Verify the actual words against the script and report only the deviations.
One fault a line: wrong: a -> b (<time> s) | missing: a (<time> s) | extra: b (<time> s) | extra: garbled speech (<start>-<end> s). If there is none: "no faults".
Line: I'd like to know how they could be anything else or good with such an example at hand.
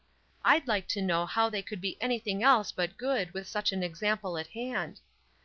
wrong: or -> but (2.7 s)